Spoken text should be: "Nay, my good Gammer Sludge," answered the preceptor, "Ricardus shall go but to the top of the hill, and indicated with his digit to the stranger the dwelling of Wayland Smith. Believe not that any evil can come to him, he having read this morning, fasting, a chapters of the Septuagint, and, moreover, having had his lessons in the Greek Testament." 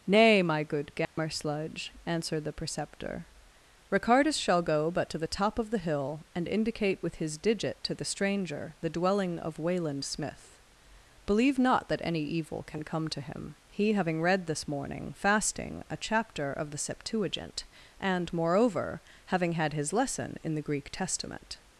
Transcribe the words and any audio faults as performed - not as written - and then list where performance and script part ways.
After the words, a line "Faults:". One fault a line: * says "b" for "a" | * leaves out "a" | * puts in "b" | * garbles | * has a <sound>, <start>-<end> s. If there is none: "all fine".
"Nay, my good Gammer Sludge," answered the preceptor, "Ricardus shall go but to the top of the hill, and indicate with his digit to the stranger the dwelling of Wayland Smith. Believe not that any evil can come to him, he having read this morning, fasting, a chapter of the Septuagint, and, moreover, having had his lesson in the Greek Testament."
Faults:
* has a dropout, 1.0-1.2 s
* says "indicate" for "indicated"
* says "chapter" for "chapters"
* says "lesson" for "lessons"